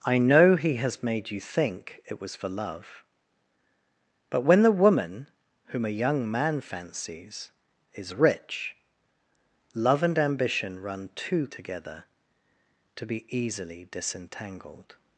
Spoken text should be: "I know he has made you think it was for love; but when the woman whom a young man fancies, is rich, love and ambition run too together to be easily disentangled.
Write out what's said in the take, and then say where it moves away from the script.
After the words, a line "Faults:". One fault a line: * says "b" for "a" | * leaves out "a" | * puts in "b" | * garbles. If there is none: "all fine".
"I know he has made you think it was for love; but when the woman whom a young man fancies, is rich, love and ambition run too together to be easily disentangled.
Faults:
all fine